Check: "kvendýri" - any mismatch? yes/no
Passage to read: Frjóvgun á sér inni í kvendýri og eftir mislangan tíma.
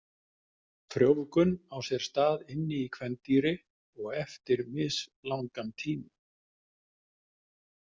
no